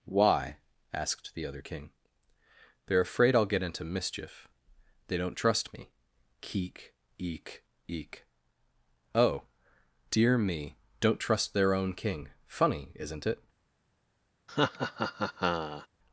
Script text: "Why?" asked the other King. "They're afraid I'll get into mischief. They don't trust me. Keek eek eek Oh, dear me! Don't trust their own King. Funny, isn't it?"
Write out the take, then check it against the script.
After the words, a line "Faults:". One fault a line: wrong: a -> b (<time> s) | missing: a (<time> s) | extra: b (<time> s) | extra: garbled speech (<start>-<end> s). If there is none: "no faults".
"Why?" asked the other King. "They're afraid I'll get into mischief. They don't trust me. Keek eek eek Oh, dear me! Don't trust their own King. Funny, isn't it?"
Faults:
no faults